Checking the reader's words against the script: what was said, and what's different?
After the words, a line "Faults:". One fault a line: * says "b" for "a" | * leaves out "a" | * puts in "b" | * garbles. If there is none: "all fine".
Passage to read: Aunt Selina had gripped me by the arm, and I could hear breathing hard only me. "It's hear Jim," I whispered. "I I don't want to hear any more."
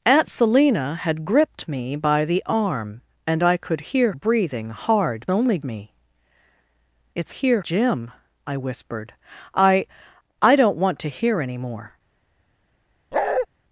Aunt Selina had gripped me by the arm, and I could hear breathing hard only me. "It's hear Jim," I whispered. "I I don't want to hear any more."
Faults:
all fine